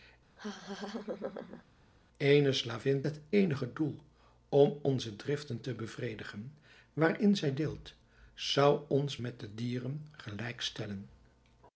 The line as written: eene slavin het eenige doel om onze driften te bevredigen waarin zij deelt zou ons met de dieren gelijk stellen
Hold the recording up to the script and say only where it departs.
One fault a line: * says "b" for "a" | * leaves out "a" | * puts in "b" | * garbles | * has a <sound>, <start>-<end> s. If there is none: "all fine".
* has a laugh, 0.4-1.6 s